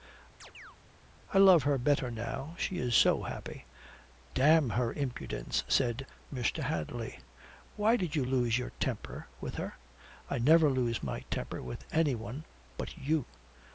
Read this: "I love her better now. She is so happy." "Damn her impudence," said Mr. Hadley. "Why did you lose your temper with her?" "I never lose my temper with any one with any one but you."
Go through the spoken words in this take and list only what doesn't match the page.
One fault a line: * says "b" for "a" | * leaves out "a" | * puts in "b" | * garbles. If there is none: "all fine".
* leaves out "with any one"